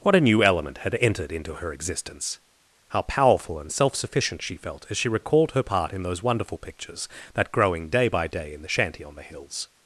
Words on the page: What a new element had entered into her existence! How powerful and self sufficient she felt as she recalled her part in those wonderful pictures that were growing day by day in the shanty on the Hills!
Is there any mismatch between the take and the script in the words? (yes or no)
yes